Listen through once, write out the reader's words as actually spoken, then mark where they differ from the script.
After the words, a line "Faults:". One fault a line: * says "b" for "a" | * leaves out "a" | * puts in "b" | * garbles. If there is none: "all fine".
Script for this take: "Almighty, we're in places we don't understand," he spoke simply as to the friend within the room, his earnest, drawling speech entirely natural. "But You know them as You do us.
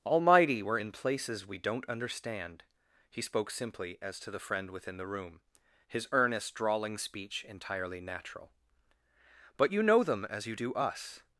"Almighty, we're in places we don't understand," he spoke simply as to the friend within the room, his earnest, drawling speech entirely natural. "But You know them as You do us.
Faults:
all fine